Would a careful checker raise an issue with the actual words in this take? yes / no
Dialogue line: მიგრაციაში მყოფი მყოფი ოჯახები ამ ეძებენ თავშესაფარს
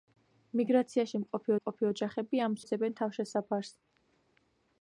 no